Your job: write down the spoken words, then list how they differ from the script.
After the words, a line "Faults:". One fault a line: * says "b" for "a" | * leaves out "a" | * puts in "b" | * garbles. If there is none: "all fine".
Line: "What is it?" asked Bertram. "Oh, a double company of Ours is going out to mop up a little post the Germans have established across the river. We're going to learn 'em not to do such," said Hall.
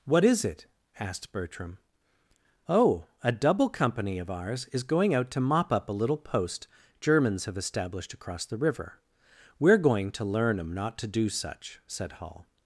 "What is it?" asked Bertram. "Oh, a double company of Ours is going out to mop up a little post Germans have established across the river. We're going to learn 'em not to do such," said Hall.
Faults:
* leaves out "the"